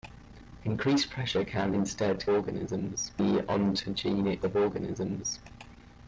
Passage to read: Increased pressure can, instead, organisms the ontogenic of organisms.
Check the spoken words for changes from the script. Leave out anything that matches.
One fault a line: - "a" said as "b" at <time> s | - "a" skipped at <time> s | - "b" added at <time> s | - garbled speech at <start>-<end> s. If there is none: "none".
none